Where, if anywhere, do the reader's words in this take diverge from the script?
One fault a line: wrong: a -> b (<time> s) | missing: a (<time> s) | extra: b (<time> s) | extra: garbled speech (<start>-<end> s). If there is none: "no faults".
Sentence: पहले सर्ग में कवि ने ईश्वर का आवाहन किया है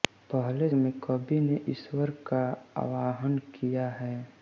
missing: सर्ग (0.7 s)